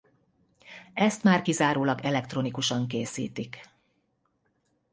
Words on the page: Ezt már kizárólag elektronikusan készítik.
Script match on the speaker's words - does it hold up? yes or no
yes